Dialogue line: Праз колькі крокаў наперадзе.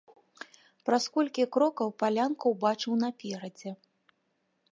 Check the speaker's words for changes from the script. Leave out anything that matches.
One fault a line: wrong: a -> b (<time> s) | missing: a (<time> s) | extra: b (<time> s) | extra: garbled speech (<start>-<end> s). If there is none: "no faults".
extra: палянку ўбачыў (2.0 s)